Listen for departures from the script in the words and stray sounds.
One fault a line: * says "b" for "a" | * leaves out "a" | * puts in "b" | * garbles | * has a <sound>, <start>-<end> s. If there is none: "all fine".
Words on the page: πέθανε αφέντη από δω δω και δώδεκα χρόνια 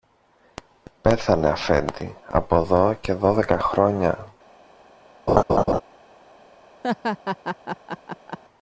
* leaves out "δω"
* has a laugh, 5.3-5.8 s
* has a laugh, 6.8-8.4 s